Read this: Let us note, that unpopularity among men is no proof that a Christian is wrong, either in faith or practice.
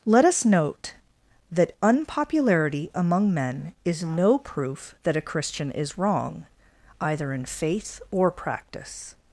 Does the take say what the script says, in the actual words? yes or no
yes